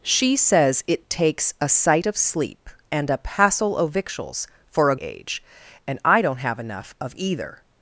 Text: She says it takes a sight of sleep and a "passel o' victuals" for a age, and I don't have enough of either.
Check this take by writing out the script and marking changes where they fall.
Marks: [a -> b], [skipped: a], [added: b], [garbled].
She says it takes a sight of sleep and a "passel o' victuals" for a age, and I don't have enough of either.